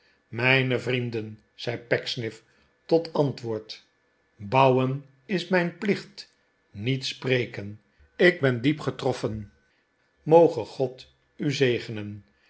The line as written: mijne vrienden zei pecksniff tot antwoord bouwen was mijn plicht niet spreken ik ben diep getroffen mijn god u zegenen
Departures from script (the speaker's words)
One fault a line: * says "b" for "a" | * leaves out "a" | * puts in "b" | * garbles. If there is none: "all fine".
* says "is" for "was"
* says "moge" for "mijn"